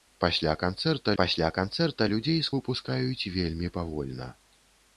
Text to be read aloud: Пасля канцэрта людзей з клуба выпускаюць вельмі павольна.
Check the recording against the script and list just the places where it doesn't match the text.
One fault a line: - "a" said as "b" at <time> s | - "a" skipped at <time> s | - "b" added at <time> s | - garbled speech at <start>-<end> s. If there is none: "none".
- "пасля канцэрта" added at 1.2 s
- "клуба" skipped at 2.5 s